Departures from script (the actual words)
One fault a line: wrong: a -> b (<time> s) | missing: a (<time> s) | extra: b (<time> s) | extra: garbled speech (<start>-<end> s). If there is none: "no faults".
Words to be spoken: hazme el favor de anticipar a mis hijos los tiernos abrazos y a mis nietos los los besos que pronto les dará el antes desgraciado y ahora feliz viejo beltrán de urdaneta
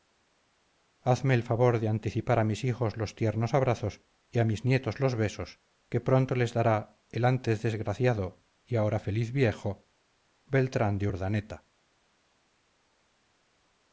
missing: los (5.1 s)